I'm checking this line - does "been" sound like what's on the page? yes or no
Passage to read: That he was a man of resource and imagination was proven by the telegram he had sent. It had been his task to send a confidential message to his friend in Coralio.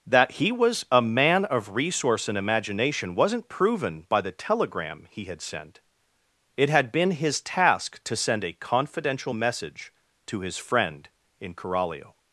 yes